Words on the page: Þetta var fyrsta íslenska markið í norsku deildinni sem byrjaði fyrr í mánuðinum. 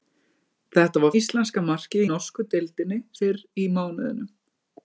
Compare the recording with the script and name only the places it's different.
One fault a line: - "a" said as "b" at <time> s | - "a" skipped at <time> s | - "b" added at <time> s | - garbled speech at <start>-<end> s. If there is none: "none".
- "fyrsta" skipped at 1.1 s
- "í" skipped at 2.0 s
- "sem byrjaði" skipped at 3.0 s